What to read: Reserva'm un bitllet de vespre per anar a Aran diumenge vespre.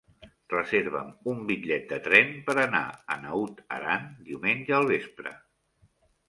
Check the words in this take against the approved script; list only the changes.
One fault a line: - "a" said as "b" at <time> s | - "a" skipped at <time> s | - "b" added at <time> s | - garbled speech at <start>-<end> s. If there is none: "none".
- "vespre" said as "tren" at 2.1 s
- "Naut" added at 3.3 s
- "al" added at 4.8 s